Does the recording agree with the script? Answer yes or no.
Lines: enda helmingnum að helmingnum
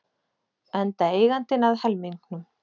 no